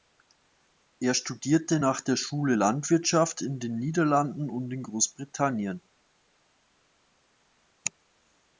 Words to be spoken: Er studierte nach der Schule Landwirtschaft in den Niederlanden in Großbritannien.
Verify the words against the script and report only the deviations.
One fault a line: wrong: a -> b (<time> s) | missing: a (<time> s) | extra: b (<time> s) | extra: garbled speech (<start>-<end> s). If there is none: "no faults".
extra: und (4.5 s)